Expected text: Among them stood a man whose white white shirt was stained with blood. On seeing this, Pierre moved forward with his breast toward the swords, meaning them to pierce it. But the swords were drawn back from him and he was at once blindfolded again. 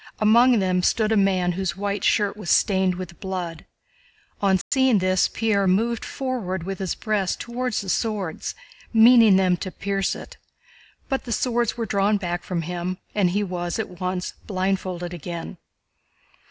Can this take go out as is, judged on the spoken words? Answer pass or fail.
fail